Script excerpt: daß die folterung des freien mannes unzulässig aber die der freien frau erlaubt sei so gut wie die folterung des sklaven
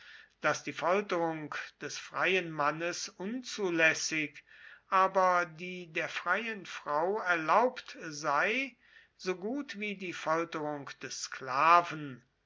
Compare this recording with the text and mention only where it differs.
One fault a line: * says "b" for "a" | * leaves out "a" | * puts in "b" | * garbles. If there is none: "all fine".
all fine